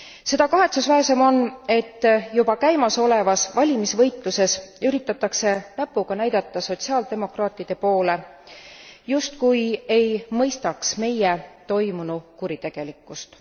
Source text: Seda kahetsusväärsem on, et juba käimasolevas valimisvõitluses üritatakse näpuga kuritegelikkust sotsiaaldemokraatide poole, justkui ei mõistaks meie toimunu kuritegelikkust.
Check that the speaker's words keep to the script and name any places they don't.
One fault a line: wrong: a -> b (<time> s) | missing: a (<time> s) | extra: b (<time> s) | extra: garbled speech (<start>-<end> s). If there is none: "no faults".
wrong: kuritegelikkust -> näidata (6.2 s)